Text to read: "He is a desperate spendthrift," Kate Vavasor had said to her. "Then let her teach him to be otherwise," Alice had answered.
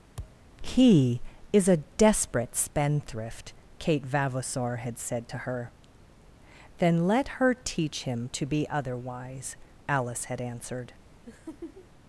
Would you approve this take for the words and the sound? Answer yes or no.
no